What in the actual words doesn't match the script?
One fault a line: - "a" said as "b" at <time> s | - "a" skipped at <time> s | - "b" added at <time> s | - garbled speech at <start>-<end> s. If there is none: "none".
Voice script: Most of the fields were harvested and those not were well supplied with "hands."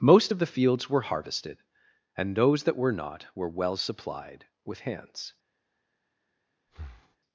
- "that were" added at 2.6 s